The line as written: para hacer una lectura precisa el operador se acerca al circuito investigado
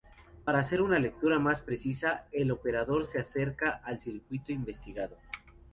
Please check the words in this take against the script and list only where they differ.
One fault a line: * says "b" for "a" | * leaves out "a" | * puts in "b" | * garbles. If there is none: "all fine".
* puts in "más"